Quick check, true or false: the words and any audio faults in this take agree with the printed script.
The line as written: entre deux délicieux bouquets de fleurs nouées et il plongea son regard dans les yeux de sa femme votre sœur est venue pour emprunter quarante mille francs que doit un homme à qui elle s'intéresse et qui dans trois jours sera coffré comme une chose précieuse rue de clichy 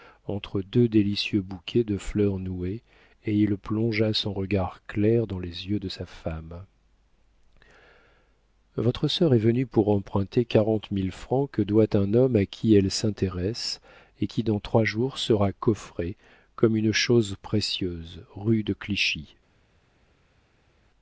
false